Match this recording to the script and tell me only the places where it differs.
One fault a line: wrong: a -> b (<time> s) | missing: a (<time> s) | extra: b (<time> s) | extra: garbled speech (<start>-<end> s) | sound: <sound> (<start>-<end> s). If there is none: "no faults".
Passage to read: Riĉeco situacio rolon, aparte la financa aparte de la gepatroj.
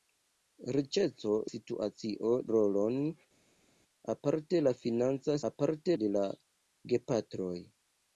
no faults